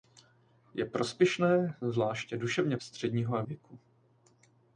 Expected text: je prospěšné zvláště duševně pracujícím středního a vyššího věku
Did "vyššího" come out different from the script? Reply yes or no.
yes